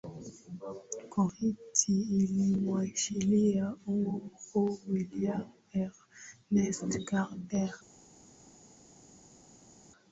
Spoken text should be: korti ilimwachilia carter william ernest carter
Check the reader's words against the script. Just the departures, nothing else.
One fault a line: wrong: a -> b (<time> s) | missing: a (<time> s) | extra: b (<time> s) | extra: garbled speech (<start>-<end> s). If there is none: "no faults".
wrong: carter -> huru (3.9 s)